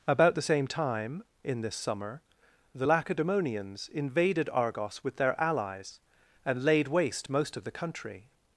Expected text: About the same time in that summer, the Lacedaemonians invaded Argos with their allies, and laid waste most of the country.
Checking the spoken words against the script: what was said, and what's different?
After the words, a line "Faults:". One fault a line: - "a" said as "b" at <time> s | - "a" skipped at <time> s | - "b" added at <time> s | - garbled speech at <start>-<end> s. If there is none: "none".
About the same time in this summer, the Lacedaemonians invaded Argos with their allies, and laid waste most of the country.
Faults:
- "that" said as "this" at 1.6 s